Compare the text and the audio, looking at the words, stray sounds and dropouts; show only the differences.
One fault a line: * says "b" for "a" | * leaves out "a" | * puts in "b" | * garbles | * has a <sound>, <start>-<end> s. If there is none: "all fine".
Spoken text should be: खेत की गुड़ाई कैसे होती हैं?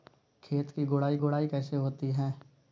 * puts in "गुड़ाई"